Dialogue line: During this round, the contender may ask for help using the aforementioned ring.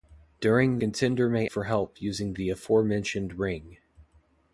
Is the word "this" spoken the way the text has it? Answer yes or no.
no